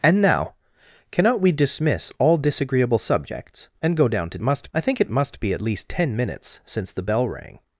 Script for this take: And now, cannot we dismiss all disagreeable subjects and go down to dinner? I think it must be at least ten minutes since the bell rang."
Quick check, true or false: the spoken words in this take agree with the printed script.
false